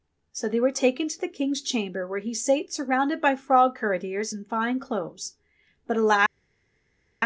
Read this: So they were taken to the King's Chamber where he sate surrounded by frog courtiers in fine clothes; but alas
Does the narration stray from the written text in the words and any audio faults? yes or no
no